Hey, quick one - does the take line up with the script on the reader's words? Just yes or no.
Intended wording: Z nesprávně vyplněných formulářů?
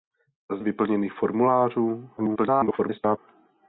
no